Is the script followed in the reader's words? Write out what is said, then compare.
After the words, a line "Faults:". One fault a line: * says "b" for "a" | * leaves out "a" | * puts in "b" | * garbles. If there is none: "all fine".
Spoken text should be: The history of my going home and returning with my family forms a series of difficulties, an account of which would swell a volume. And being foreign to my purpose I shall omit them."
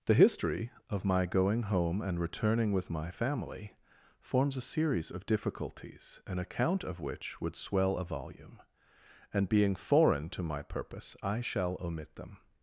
The history of my going home and returning with my family forms a series of difficulties, an account of which would swell a volume. And being foreign to my purpose I shall omit them."
Faults:
all fine